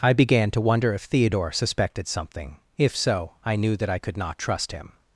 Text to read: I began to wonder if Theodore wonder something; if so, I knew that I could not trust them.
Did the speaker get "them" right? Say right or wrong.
wrong